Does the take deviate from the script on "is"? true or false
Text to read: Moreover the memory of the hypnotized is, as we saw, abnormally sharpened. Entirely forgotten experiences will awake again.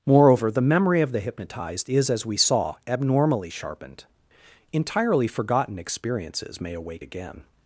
false